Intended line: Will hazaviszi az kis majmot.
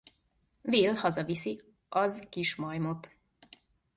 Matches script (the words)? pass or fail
pass